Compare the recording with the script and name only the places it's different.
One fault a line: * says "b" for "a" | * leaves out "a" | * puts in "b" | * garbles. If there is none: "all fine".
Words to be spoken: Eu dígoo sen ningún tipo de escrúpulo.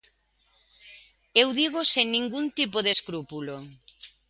all fine